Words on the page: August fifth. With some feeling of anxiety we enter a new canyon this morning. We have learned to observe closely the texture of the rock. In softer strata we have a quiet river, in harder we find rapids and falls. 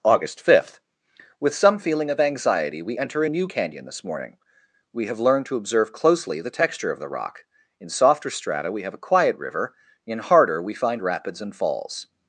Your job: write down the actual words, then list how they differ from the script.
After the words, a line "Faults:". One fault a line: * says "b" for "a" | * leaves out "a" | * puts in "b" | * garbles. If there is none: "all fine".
August fifth. With some feeling of anxiety we enter a new canyon this morning. We have learned to observe closely the texture of the rock. In softer strata we have a quiet river, in harder we find rapids and falls.
Faults:
all fine